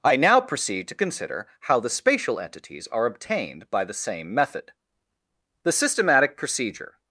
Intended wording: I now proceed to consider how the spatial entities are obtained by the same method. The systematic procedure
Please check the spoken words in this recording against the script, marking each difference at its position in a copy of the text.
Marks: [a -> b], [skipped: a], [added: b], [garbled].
I now proceed to consider how the spatial entities are obtained by the same method. The systematic procedure